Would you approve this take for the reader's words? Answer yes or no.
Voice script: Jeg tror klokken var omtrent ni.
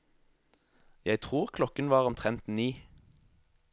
yes